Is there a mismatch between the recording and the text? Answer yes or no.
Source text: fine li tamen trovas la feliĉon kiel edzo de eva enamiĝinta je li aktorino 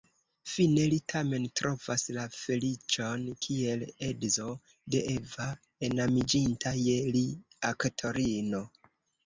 no